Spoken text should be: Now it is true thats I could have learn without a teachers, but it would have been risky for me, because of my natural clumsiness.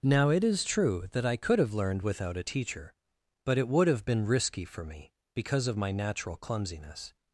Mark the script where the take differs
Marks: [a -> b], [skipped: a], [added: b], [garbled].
Now it is true [thats -> that] I could have [learn -> learned] without a [teachers, -> teacher] but it would have been risky for me, because of my natural clumsiness.